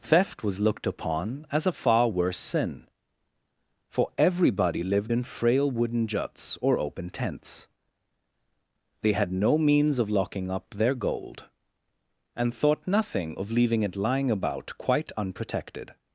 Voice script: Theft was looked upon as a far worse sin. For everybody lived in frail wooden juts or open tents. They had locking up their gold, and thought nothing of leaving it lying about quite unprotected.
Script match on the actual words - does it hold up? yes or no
no